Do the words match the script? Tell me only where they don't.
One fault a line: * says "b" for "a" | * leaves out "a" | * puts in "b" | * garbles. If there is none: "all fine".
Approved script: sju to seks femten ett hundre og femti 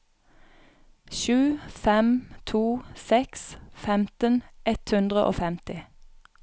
* puts in "fem"